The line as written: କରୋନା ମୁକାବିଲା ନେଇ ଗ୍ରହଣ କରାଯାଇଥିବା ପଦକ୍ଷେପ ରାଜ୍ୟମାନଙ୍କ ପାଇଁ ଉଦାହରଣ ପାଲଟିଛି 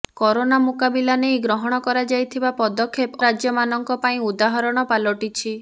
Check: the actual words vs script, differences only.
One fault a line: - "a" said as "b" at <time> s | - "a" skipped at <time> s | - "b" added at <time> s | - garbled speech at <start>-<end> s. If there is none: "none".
none